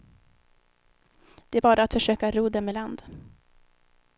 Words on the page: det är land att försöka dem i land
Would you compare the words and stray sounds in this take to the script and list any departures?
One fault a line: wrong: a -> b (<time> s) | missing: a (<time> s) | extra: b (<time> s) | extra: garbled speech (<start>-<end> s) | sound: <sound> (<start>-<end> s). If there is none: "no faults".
wrong: land -> bara (1.6 s)
extra: ro (2.3 s)